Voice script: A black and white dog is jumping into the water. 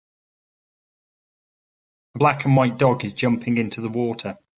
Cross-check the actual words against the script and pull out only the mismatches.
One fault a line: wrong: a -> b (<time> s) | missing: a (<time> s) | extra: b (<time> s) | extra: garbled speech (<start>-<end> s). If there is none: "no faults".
no faults